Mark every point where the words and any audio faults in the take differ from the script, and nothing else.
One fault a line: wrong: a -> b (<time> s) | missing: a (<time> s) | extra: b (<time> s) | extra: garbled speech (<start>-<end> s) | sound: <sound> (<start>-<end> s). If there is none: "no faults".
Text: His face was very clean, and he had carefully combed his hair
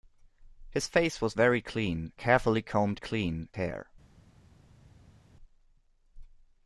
missing: and he had (2.1 s)
wrong: his -> clean (3.0 s)